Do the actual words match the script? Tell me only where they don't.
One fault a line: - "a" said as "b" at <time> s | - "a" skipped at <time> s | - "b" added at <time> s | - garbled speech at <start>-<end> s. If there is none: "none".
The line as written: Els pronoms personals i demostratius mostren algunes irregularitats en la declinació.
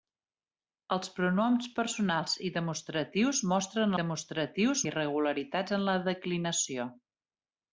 - "algunes" said as "demostratius" at 4.0 s